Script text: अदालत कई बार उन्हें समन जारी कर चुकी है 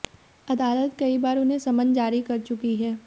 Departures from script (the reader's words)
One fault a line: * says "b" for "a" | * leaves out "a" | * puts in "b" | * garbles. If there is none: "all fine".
all fine